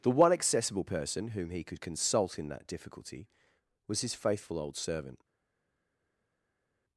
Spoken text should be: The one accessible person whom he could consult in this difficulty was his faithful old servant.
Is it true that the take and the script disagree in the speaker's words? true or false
true